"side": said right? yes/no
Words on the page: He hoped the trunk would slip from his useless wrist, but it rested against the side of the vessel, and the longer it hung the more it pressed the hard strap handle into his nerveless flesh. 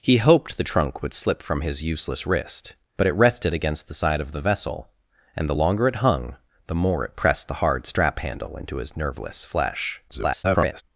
yes